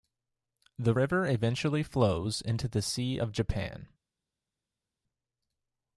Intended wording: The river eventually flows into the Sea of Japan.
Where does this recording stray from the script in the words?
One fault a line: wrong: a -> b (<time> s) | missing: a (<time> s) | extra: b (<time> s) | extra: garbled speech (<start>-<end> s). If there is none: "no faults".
no faults